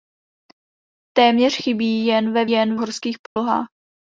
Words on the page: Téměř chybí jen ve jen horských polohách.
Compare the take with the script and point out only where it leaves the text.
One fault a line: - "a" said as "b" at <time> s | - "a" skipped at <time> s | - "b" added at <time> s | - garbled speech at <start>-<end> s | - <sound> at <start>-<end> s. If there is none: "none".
- dropout at 3.3-3.4 s